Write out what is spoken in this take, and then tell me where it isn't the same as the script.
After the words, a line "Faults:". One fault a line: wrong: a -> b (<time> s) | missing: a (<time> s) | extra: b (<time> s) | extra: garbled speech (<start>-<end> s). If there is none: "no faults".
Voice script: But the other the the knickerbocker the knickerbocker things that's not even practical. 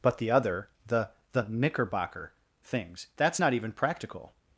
But the other the the knickerbocker things that's not even practical.
Faults:
missing: the knickerbocker (2.3 s)